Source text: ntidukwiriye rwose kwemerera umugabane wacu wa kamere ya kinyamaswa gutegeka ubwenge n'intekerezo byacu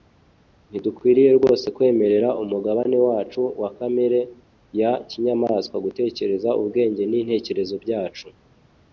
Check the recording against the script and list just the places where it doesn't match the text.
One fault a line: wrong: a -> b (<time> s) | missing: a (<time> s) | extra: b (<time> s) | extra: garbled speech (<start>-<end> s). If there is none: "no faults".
no faults